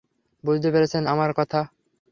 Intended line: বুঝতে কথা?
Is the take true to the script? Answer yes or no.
no